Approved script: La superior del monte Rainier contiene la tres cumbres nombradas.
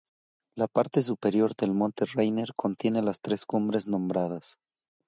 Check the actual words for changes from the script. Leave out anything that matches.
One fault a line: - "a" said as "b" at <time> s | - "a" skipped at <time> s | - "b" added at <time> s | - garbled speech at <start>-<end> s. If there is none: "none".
- "parte" added at 0.7 s
- "la" said as "las" at 3.0 s